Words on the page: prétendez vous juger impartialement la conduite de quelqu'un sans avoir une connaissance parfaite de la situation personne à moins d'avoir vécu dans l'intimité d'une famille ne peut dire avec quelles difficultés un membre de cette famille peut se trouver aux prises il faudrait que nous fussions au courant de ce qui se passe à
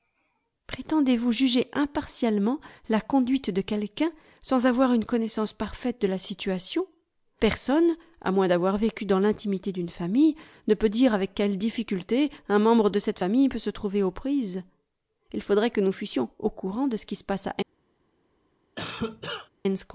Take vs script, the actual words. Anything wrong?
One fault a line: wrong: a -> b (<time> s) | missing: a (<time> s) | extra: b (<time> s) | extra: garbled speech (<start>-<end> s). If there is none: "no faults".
no faults